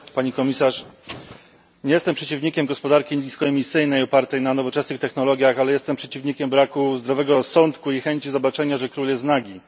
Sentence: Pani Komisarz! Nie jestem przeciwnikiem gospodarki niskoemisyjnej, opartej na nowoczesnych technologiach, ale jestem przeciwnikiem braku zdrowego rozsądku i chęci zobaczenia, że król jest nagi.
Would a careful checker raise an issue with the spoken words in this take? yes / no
no